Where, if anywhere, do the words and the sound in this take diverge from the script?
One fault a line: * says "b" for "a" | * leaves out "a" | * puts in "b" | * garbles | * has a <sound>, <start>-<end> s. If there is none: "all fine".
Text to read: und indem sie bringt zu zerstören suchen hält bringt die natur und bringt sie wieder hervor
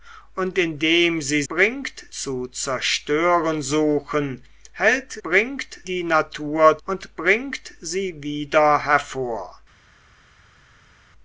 all fine